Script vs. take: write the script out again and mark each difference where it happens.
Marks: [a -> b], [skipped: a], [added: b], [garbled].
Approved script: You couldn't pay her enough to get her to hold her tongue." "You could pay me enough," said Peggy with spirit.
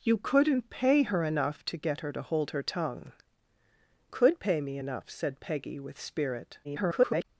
You couldn't pay her enough to get her to hold her tongue." [skipped: "You] could pay me enough," said Peggy with spirit. [garbled]